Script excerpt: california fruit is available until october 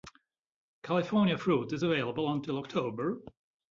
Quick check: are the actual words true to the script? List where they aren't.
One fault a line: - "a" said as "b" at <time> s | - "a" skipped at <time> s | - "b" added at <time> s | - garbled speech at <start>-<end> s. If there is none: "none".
none